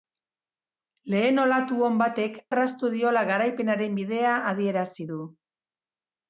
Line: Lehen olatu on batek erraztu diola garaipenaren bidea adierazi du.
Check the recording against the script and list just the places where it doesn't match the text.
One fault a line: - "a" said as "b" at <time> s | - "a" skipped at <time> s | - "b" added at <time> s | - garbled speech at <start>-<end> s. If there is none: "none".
none